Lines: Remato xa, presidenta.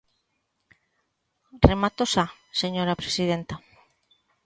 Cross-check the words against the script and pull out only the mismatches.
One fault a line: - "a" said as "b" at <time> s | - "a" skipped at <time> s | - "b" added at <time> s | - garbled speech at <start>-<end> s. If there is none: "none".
- "señora" added at 2.6 s